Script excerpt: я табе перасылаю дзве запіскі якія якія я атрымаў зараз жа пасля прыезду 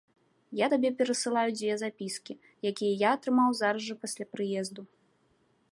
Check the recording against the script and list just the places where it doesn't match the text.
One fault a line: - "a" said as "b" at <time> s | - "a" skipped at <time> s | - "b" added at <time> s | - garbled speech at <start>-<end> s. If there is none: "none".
- "якія" skipped at 2.9 s